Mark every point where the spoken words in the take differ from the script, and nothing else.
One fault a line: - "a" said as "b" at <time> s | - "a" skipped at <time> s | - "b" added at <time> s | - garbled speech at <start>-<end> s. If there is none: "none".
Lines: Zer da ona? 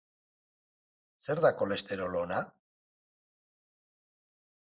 - "kolesterol" added at 1.6 s